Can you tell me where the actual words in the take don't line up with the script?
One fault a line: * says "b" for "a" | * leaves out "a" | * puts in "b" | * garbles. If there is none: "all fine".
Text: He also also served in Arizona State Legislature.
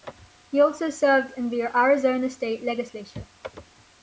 * leaves out "also"
* puts in "the"